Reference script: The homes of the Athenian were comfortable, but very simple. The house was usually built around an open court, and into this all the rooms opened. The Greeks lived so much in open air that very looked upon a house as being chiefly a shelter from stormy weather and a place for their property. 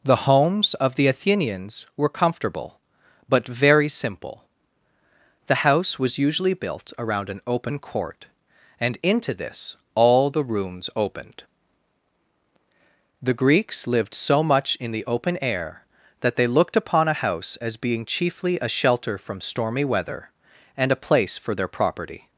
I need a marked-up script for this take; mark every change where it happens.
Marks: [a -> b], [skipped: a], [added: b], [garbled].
The homes of the [Athenian -> Athenians] were comfortable, but very simple. The house was usually built around an open court, and into this all the rooms opened. The Greeks lived so much in [added: the] open air that [very -> they] looked upon a house as being chiefly a shelter from stormy weather and a place for their property.